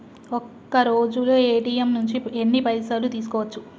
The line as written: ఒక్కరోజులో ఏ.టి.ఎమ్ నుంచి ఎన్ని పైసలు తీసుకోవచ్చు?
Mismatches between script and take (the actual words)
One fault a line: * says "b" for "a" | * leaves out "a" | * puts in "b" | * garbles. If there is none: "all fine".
all fine